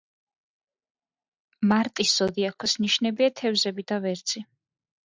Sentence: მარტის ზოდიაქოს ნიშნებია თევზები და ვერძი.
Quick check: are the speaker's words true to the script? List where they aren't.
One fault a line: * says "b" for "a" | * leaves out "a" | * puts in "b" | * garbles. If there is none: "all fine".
all fine